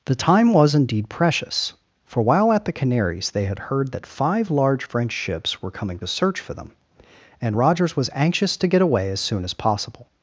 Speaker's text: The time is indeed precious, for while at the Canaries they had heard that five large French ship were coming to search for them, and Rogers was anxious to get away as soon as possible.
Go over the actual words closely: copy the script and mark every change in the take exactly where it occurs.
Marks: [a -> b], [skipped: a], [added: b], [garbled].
The time [is -> was] indeed precious, for while at the Canaries they had heard that five large French [ship -> ships] were coming to search for them, and Rogers was anxious to get away as soon as possible.